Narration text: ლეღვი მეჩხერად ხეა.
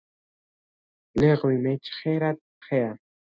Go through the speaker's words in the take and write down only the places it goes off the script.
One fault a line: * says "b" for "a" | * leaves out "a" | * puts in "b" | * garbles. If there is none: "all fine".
all fine